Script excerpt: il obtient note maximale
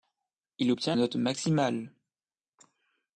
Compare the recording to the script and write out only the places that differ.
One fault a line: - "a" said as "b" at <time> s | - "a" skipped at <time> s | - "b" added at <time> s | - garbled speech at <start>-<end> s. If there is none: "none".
none